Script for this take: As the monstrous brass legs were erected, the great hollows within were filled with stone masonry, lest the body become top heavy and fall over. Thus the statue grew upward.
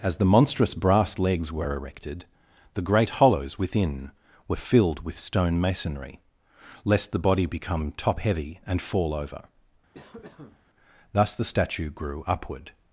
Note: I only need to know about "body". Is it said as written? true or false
true